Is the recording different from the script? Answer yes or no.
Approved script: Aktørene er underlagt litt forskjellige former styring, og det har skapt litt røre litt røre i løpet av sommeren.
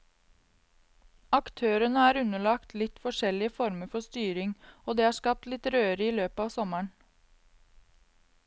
yes